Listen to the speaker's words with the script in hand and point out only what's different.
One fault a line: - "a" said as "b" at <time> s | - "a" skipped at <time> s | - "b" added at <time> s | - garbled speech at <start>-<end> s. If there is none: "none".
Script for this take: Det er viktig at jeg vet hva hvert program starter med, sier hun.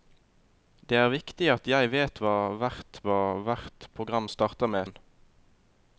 - "hva hvert" added at 3.1 s
- "sier" skipped at 4.9 s